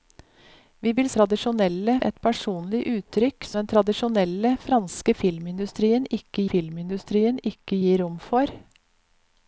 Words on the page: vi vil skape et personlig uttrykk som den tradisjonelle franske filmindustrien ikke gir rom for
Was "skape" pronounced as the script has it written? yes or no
no